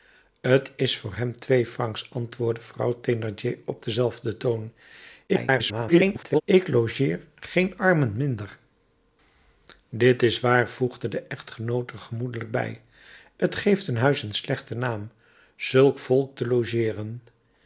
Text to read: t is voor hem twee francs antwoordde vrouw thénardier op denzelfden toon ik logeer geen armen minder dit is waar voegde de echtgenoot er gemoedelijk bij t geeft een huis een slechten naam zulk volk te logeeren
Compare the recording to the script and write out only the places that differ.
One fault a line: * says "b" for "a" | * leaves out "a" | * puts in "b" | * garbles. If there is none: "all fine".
* garbles